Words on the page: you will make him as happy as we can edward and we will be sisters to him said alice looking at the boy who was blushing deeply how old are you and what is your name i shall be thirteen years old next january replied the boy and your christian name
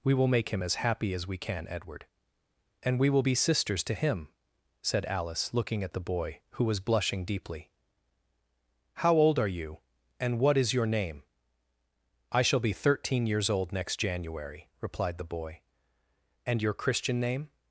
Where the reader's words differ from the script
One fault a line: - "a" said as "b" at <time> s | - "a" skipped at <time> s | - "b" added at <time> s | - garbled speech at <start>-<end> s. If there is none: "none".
- "you" said as "we" at 0.0 s